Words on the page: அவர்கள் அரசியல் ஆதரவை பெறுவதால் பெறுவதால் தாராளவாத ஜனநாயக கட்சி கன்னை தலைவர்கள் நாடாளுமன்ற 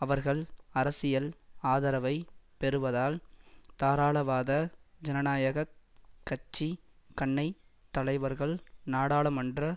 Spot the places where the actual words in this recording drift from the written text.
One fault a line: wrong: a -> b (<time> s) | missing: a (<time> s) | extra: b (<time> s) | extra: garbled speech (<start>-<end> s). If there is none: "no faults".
missing: பெறுவதால் (3.2 s)